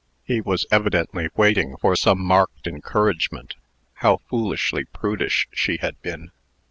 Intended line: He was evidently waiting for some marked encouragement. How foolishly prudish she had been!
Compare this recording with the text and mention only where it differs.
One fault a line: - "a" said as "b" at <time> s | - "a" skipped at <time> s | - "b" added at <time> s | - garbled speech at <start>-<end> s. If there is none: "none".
none